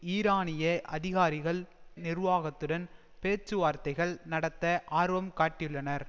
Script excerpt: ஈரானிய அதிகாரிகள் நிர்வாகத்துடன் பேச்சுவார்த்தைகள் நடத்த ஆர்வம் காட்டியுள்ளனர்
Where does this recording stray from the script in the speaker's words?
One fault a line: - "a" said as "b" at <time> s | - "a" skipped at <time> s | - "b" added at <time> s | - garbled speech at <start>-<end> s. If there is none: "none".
none